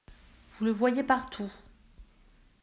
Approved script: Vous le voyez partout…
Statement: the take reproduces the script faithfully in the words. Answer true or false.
true